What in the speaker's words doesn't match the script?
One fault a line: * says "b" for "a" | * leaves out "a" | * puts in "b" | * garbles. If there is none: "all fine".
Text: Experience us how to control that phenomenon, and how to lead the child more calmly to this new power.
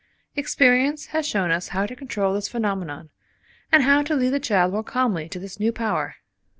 * puts in "has shown"
* says "this" for "that"